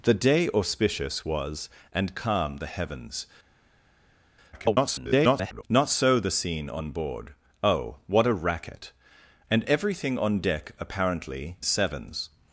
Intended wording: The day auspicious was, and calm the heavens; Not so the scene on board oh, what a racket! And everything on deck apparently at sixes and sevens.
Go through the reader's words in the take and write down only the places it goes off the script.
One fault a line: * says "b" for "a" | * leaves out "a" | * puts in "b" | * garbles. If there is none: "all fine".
* garbles
* leaves out "at sixes and"